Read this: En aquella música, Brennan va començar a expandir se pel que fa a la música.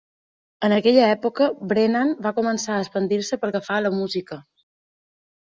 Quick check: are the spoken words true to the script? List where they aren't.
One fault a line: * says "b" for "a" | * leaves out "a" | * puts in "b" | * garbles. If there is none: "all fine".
* says "època" for "música"